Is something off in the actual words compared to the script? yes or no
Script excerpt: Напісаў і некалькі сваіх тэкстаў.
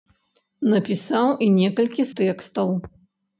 yes